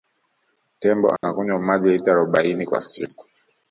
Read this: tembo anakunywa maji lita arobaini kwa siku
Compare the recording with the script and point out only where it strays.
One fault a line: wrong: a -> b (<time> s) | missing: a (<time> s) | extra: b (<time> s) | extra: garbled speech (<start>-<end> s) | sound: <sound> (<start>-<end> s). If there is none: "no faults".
sound: dropout (1.2-1.2 s)